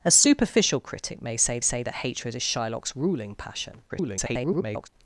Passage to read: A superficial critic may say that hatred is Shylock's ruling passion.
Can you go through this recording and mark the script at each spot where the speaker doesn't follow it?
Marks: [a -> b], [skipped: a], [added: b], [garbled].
A superficial critic may say [added: say] that hatred is Shylock's ruling passion. [garbled]